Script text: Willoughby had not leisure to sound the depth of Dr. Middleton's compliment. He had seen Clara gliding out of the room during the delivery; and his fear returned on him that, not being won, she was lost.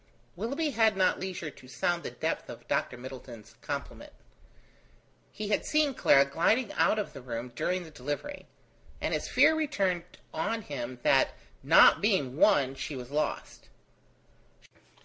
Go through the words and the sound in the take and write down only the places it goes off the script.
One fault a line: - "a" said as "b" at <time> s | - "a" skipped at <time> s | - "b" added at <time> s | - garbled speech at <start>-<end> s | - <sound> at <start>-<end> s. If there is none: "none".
none